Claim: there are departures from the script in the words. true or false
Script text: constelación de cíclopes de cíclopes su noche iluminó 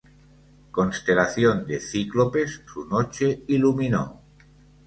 true